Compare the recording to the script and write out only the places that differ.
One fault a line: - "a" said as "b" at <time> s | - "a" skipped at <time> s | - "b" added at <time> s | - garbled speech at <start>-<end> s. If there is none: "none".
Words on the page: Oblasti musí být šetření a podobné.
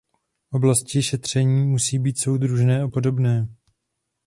- "šetření" added at 1.0 s
- "šetření" said as "soudržné" at 2.2 s